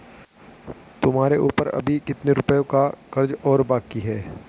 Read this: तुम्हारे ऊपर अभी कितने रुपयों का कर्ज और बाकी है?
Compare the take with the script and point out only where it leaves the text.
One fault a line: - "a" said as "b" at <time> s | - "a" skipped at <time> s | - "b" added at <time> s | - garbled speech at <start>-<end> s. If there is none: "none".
none